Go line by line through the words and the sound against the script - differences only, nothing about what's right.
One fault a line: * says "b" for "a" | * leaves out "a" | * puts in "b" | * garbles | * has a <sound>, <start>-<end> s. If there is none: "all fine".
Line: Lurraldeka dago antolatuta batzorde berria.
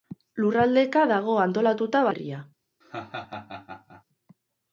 * leaves out "batzorde"
* has a laugh, 2.8-4.0 s